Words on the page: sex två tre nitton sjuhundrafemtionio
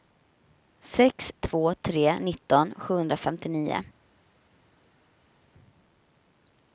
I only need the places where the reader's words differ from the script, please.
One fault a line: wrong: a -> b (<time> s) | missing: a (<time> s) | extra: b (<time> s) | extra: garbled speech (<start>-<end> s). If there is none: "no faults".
no faults